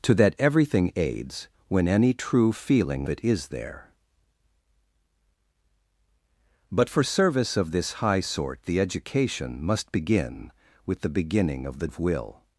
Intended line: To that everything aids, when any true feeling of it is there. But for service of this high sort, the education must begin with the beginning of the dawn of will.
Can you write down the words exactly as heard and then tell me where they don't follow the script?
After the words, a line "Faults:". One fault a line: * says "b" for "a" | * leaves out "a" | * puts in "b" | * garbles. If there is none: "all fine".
To that everything aids, when any true feeling it is there. But for service of this high sort, the education must begin with the beginning of the of will.
Faults:
* leaves out "of"
* leaves out "dawn"